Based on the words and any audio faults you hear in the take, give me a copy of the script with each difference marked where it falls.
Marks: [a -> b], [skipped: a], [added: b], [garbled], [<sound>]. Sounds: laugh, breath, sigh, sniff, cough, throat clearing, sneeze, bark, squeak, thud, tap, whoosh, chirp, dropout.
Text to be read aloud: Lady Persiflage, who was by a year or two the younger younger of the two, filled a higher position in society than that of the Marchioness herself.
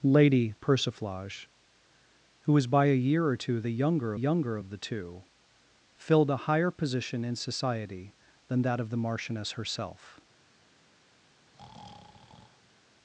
Lady Persiflage, who was by a year or two the younger younger of the two, filled a higher position in society than that of the Marchioness herself. [breath]